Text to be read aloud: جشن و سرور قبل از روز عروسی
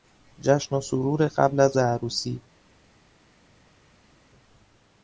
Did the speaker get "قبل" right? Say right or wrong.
right